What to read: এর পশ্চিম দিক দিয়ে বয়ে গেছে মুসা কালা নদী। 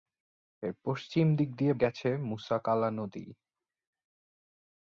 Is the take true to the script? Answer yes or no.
no